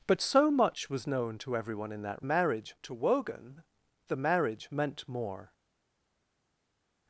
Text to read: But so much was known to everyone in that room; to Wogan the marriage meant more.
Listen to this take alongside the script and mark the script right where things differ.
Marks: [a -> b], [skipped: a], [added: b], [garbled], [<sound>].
But so much was known to everyone in that [room; -> marriage] to Wogan the marriage meant more.